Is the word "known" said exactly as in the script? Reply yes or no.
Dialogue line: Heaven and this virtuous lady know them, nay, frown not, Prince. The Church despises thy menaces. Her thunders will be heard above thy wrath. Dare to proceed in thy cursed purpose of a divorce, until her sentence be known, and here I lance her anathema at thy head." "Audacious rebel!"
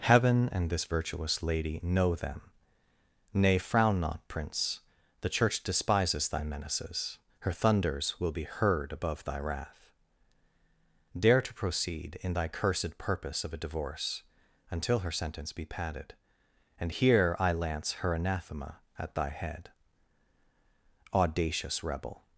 no